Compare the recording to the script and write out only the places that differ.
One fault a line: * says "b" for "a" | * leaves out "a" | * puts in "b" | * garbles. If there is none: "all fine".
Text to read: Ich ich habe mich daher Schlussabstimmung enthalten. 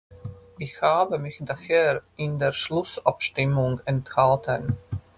* leaves out "ich"
* puts in "in der"